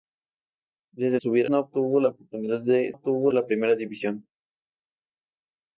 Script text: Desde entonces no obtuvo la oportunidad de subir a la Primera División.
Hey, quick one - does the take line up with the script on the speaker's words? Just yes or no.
no